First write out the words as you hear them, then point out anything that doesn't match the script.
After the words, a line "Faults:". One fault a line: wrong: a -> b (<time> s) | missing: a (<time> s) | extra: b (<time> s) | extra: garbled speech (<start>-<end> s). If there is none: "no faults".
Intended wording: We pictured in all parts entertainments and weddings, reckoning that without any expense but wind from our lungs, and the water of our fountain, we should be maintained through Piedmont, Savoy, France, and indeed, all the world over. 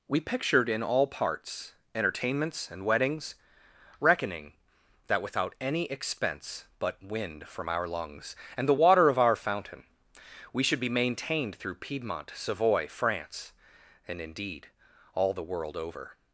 We pictured in all parts entertainments and weddings, reckoning that without any expense but wind from our lungs, and the water of our fountain, we should be maintained through Piedmont, Savoy, France, and indeed, all the world over.
Faults:
no faults